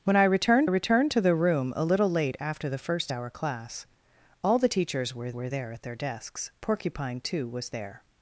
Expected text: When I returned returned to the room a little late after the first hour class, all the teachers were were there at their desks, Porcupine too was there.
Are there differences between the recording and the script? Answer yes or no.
no